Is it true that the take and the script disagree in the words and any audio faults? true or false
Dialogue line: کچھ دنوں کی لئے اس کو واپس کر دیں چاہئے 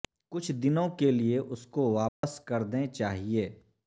true